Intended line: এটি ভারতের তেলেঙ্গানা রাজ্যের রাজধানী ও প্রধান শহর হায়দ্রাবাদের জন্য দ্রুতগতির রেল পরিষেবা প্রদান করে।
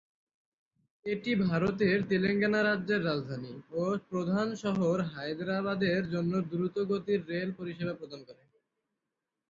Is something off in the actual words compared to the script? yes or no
no